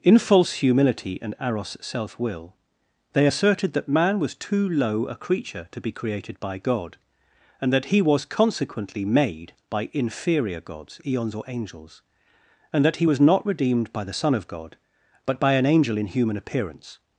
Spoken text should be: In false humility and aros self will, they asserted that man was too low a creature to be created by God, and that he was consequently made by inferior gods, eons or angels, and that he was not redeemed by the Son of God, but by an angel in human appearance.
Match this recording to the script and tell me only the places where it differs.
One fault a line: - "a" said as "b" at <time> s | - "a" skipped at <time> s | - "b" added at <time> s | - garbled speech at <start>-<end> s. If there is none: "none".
none